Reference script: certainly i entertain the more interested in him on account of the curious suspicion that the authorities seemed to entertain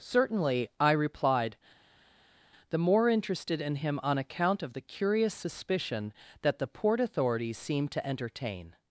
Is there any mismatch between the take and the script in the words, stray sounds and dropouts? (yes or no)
yes